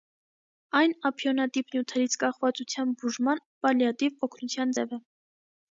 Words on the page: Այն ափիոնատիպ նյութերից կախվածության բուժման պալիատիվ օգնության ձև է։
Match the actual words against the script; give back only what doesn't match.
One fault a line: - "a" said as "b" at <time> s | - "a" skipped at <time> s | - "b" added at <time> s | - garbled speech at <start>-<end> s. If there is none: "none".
none